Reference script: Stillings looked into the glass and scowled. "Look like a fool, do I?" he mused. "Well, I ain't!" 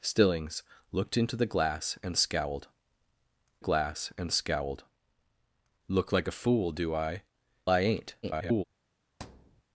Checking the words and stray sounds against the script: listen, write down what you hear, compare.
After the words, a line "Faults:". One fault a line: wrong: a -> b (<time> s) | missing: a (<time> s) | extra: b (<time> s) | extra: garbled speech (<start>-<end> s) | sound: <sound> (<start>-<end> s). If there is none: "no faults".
Stillings looked into the glass and scowled glass and scowled. "Look like a fool, do I?" I ain't!" [garbled]
Faults:
extra: glass and scowled (3.6 s)
missing: he mused Well (7.2 s)
extra: garbled speech (8.2-8.6 s)
sound: thud (9.2-9.6 s)